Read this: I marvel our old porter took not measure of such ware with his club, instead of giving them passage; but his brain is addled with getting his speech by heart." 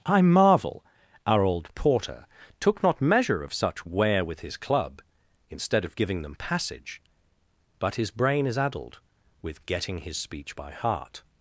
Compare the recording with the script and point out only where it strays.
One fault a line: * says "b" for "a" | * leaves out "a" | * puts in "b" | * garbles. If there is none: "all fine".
all fine